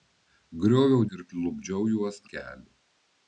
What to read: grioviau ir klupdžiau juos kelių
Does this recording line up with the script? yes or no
yes